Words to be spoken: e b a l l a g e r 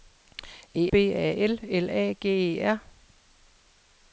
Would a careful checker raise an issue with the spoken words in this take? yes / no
no